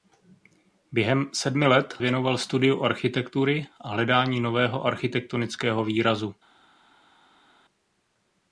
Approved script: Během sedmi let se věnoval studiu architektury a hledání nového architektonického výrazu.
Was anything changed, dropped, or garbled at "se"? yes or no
yes